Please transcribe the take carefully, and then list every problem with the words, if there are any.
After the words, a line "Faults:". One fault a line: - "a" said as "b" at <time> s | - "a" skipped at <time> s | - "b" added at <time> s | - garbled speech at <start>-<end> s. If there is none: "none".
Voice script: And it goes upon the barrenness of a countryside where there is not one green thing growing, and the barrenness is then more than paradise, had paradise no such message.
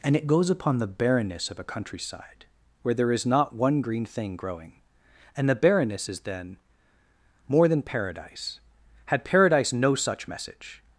And it goes upon the barrenness of a countryside where there is not one green thing growing, and the barrenness is then more than paradise, had paradise no such message.
Faults:
none